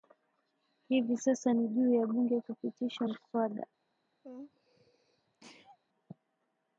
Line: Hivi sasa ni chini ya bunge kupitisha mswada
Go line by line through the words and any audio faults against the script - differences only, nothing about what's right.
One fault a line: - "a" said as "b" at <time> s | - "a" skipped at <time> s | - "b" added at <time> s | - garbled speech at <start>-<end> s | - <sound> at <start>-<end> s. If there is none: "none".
- "chini" said as "juu" at 1.7 s
- sneeze at 4.2-5.8 s